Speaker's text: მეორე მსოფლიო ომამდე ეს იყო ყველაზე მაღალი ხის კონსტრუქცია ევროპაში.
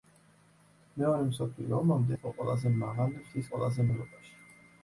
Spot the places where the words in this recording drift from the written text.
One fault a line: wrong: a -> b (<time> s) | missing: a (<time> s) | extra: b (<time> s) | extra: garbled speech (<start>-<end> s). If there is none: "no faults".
missing: ეს (2.1 s)
wrong: კონსტრუქცია -> ყველაზე (3.5 s)